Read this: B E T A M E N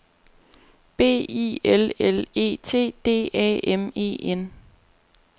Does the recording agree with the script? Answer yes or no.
no